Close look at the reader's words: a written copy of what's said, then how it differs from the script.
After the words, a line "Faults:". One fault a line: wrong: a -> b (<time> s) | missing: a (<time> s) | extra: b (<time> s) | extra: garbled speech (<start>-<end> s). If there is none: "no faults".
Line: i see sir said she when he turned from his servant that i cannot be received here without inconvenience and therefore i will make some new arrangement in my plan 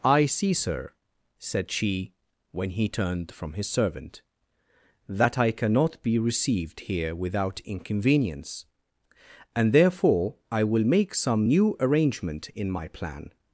i see sir said she when he turned from his servant that i cannot be received here without inconvenience and therefore i will make some new arrangement in my plan
Faults:
no faults